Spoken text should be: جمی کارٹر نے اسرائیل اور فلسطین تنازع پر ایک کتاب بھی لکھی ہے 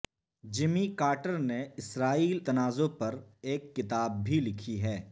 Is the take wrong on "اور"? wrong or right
wrong